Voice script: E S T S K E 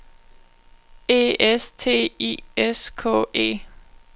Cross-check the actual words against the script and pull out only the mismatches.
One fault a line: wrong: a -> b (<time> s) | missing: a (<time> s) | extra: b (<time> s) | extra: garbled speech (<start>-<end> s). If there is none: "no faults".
extra: I (2.2 s)